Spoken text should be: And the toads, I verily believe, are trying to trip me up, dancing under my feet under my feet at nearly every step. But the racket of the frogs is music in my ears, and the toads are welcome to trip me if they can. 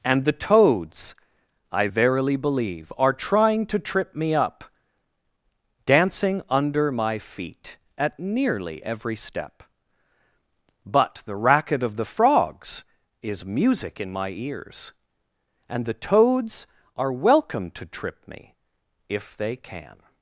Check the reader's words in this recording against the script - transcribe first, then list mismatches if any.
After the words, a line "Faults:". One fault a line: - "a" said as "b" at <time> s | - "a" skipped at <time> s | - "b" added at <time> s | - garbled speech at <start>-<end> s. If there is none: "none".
And the toads, I verily believe, are trying to trip me up, dancing under my feet at nearly every step. But the racket of the frogs is music in my ears, and the toads are welcome to trip me if they can.
Faults:
- "under my feet" skipped at 7.8 s